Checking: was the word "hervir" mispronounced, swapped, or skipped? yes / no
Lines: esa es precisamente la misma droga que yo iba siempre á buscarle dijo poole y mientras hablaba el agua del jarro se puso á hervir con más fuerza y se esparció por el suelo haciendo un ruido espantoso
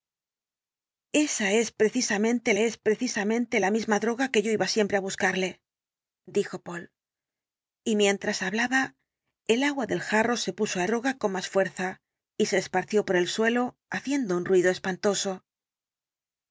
yes